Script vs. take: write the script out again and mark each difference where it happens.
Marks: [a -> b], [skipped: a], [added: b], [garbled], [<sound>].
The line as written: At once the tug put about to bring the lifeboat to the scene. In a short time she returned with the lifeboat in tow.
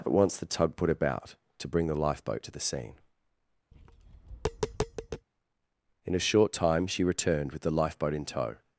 At once the tug put about to bring the lifeboat to the scene. [tap] In a short time she returned with the lifeboat in tow.